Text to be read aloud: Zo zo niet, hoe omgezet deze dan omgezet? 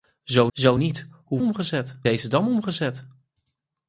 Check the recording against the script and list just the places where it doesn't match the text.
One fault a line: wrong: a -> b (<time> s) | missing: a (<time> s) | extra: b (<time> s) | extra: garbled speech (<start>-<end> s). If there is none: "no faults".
no faults